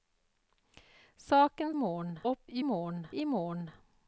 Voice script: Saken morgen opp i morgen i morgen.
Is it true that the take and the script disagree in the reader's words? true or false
false